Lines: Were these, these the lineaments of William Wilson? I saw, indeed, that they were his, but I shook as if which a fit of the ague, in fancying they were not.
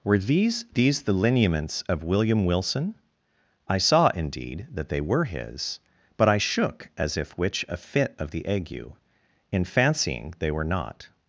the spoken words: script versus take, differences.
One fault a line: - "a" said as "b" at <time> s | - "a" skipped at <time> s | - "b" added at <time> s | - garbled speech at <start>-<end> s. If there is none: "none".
none